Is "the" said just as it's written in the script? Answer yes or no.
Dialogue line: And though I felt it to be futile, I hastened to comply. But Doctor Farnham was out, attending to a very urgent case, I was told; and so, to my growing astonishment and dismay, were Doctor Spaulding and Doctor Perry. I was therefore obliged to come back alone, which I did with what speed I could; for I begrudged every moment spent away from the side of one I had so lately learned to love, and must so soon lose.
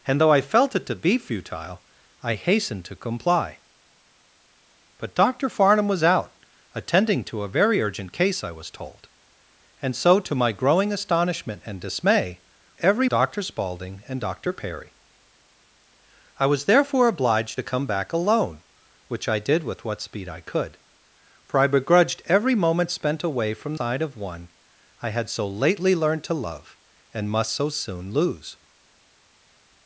no